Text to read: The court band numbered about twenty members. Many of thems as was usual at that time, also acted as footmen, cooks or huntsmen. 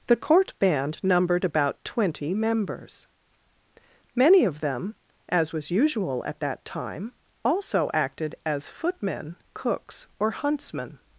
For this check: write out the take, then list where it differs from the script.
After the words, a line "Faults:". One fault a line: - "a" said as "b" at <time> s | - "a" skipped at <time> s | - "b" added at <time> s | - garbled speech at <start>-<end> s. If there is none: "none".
The court band numbered about twenty members. Many of them as was usual at that time, also acted as footmen, cooks or huntsmen.
Faults:
- "thems" said as "them" at 4.6 s